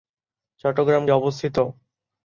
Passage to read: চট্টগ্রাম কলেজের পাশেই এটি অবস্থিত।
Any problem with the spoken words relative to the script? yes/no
yes